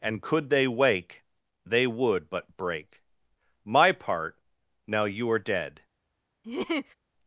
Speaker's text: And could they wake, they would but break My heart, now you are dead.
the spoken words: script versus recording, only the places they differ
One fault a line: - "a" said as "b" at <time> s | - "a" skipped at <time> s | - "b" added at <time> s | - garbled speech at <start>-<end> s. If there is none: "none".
- "heart" said as "part" at 3.9 s